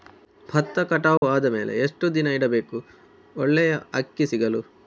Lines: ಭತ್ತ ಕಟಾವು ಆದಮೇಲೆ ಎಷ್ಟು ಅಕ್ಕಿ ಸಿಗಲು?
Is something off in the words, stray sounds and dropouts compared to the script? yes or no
yes